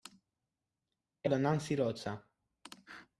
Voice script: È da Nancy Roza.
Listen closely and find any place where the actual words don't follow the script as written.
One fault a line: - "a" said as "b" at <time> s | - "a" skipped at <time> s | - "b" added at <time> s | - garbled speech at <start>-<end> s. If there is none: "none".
none